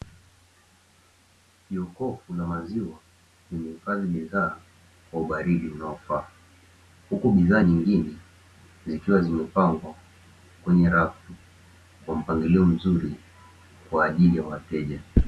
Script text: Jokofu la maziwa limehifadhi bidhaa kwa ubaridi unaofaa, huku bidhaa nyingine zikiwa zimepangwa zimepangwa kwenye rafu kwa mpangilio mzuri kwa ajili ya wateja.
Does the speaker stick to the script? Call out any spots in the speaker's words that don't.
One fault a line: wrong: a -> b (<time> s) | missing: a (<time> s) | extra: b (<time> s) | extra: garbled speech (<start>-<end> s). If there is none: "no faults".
missing: zimepangwa (9.9 s)